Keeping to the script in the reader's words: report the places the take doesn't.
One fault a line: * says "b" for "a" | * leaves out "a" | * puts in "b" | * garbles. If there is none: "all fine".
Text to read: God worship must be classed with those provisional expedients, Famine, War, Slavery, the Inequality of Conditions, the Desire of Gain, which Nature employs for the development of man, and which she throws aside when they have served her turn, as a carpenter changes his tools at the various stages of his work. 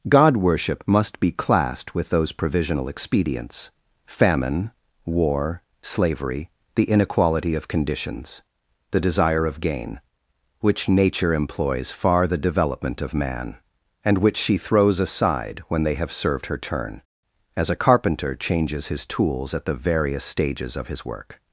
* says "far" for "for"